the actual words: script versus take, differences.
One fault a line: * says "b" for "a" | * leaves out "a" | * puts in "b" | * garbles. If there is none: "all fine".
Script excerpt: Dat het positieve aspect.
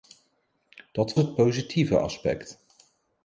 all fine